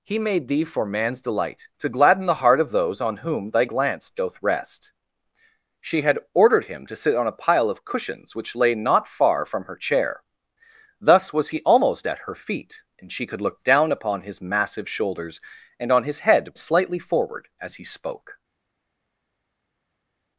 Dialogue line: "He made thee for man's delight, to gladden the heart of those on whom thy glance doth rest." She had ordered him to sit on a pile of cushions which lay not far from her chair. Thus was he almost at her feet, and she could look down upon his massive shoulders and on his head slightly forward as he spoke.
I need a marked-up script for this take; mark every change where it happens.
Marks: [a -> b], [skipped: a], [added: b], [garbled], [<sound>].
"He made thee for man's delight, to gladden the heart of those on whom thy glance doth rest." She had ordered him to sit on a pile of cushions which lay not far from her chair. Thus was he almost at her feet, and she could look down upon his massive shoulders and on his head slightly forward as he spoke.